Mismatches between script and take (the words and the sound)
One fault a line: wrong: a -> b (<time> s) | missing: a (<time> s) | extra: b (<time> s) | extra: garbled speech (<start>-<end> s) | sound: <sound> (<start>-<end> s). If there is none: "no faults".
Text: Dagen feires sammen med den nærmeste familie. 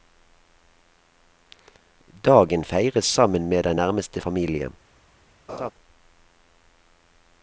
sound: laugh (5.5-5.7 s)